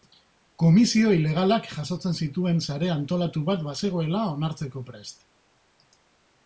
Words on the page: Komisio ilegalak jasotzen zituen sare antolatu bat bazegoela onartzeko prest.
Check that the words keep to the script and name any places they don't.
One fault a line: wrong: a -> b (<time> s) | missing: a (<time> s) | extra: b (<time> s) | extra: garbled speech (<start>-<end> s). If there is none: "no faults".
no faults